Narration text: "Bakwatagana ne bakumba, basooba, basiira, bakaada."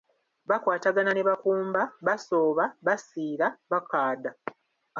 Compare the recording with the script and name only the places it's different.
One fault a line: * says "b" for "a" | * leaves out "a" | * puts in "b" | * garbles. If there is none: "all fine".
all fine